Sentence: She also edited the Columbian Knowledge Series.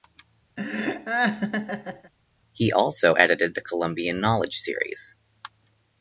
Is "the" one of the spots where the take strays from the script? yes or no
no